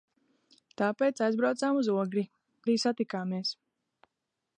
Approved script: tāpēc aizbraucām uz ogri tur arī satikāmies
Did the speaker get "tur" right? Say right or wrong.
wrong